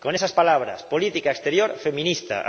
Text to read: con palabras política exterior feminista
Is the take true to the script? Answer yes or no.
no